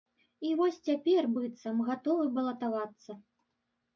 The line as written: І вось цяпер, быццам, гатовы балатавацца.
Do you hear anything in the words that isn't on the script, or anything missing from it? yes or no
no